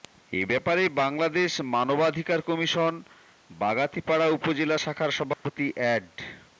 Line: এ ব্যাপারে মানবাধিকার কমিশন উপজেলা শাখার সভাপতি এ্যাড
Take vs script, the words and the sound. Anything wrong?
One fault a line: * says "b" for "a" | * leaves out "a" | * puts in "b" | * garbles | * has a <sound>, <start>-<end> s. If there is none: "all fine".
* puts in "বাংলাদেশ"
* puts in "বাগাতিপাড়া"
* has a dropout, 5.3-5.5 s